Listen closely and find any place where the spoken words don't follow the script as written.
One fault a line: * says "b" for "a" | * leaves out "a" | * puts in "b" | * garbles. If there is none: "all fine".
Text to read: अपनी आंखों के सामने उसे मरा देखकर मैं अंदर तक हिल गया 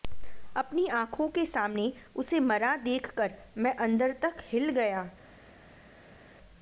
all fine